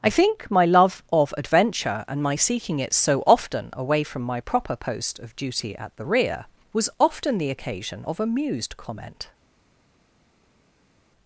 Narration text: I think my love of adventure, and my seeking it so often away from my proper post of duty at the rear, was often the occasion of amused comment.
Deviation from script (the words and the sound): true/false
false